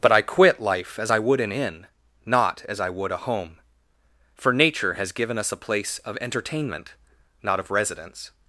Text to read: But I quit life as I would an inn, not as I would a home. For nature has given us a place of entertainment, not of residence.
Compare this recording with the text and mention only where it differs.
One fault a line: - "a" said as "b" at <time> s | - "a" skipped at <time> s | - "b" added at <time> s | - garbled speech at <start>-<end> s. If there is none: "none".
none